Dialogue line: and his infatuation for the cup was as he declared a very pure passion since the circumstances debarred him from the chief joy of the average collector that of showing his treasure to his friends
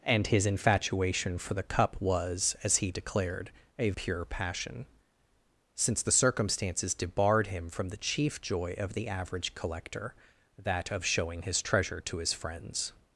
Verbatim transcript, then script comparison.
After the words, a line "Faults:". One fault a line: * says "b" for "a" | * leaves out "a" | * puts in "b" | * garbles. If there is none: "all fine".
and his infatuation for the cup was as he declared a pure passion since the circumstances debarred him from the chief joy of the average collector that of showing his treasure to his friends
Faults:
* leaves out "very"